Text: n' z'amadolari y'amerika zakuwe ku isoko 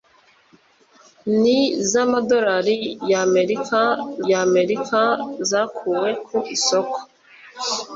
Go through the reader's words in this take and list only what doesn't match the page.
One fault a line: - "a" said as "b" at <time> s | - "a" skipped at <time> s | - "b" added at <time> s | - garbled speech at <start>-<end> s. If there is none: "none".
- "y'amerika" added at 4.3 s